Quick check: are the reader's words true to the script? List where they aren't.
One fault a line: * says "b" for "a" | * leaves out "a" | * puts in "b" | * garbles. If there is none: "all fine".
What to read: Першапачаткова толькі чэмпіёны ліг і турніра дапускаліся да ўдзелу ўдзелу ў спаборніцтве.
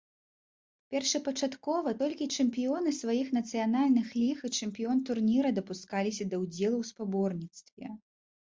* puts in "сваіх нацыянальных"
* puts in "чэмпіён"
* leaves out "ўдзелу"